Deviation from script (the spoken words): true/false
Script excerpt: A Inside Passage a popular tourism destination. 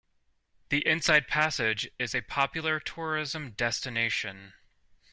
true